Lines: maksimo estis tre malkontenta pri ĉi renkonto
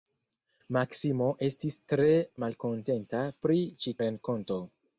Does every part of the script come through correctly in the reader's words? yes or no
yes